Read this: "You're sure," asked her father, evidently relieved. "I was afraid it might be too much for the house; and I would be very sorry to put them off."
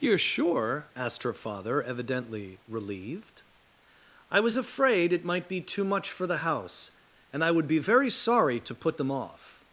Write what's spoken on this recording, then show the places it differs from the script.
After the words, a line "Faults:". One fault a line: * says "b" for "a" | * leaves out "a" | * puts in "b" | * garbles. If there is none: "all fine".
"You're sure," asked her father, evidently relieved. "I was afraid it might be too much for the house; and I would be very sorry to put them off."
Faults:
all fine